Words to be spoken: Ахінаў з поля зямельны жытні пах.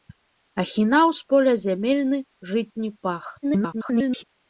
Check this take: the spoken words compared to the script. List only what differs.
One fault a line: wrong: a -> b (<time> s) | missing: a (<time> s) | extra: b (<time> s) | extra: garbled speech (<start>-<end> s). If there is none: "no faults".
extra: garbled speech (3.4-4.2 s)